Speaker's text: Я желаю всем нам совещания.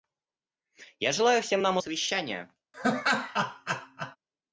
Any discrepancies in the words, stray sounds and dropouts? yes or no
yes